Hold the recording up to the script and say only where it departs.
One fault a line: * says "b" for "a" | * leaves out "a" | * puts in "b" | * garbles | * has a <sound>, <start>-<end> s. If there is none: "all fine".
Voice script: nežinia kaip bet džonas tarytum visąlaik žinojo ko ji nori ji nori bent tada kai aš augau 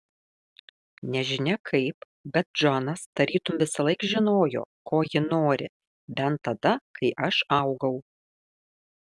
* leaves out "ji nori"